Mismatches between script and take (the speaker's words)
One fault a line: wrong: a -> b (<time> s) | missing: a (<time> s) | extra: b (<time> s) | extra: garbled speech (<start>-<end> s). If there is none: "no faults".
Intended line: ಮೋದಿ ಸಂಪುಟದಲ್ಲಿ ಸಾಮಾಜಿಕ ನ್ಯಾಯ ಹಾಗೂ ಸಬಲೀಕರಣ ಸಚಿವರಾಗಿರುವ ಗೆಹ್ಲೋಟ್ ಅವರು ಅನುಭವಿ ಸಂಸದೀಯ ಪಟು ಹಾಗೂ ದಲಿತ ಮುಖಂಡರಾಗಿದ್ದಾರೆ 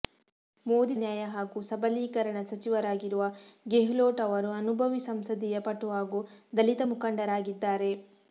missing: ಸಂಪುಟದಲ್ಲಿ ಸಾಮಾಜಿಕ (0.9 s)